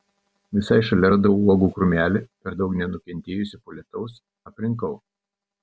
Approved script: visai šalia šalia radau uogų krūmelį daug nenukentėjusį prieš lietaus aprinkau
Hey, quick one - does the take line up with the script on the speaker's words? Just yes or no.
no